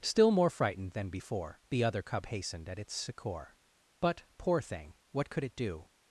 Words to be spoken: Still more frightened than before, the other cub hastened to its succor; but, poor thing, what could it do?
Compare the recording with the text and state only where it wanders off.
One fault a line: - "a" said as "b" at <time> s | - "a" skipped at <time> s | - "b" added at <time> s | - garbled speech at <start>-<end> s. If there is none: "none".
- "to" said as "at" at 2.7 s